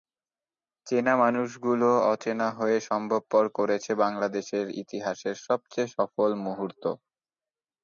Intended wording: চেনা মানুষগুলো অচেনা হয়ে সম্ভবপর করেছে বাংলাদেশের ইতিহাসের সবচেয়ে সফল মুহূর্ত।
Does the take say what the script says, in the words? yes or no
yes